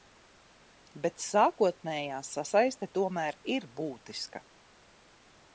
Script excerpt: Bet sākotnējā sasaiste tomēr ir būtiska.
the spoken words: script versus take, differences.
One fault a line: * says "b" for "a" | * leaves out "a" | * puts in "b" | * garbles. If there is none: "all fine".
all fine